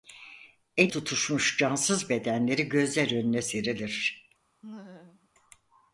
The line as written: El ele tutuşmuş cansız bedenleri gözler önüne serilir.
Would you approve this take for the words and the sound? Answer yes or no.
no